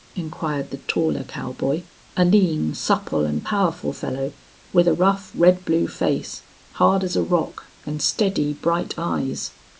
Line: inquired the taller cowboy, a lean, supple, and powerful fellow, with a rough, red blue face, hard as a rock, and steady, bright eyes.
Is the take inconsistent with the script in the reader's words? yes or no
no